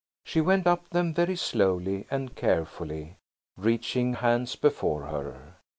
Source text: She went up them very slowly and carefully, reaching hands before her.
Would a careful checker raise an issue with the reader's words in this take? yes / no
no